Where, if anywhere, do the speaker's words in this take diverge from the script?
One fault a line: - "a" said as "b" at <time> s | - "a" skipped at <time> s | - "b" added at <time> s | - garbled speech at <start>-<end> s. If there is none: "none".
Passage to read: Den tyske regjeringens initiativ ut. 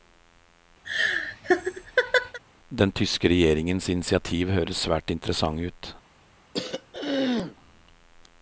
- "høres svært interessant" added at 4.6 s